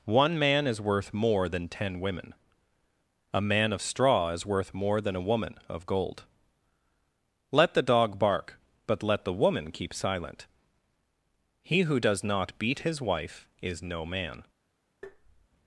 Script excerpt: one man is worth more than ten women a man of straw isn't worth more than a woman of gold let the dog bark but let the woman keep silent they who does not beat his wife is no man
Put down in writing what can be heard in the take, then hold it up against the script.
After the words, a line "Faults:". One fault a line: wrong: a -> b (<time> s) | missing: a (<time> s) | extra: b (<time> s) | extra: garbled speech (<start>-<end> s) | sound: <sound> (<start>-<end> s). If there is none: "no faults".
one man is worth more than ten women a man of straw is worth more than a woman of gold let the dog bark but let the woman keep silent he who does not beat his wife is no man
Faults:
wrong: isn't -> is (4.3 s)
wrong: they -> he (11.6 s)
sound: tap (15.0-15.5 s)